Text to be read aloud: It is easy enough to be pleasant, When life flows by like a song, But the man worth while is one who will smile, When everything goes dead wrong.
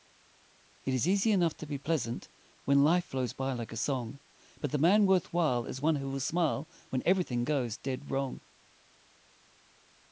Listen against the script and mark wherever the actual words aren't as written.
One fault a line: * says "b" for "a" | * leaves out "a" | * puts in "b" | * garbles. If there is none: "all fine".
all fine